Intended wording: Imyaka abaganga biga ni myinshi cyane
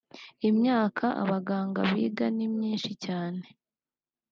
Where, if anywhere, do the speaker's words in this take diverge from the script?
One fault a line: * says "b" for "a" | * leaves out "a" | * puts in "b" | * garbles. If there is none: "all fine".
all fine